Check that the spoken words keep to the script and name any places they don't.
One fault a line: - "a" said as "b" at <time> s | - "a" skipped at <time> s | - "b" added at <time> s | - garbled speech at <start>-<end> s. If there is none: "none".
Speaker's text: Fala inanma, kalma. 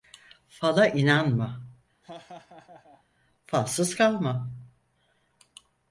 - "falsız" added at 3.4 s